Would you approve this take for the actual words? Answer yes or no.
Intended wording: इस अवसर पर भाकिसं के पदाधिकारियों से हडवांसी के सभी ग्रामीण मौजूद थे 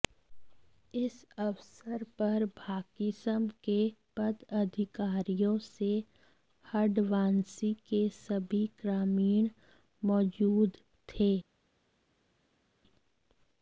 yes